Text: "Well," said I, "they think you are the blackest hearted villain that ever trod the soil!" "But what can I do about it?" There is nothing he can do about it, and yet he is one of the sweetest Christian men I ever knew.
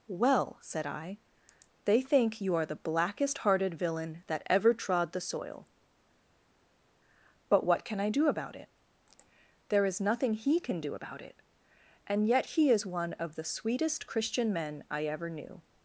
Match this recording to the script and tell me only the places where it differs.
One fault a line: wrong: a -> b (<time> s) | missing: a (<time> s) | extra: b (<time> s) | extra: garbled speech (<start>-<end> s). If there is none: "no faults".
no faults